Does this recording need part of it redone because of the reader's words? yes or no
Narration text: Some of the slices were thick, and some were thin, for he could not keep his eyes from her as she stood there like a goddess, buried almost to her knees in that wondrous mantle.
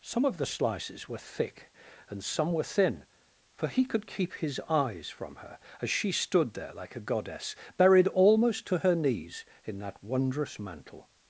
yes